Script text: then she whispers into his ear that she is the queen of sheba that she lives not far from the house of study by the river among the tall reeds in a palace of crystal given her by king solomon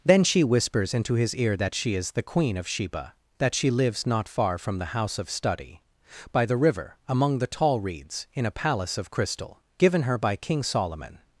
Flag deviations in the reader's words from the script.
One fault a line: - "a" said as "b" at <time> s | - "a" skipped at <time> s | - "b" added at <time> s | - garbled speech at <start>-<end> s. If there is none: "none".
none